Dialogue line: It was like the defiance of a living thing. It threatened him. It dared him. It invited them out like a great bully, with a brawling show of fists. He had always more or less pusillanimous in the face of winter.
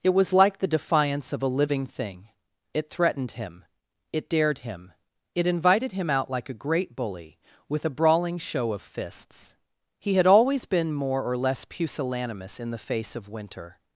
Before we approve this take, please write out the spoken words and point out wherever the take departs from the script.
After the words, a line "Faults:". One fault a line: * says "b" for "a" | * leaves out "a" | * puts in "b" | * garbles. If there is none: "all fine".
It was like the defiance of a living thing. It threatened him. It dared him. It invited him out like a great bully, with a brawling show of fists. He had always been more or less pusillanimous in the face of winter.
Faults:
* says "him" for "them"
* puts in "been"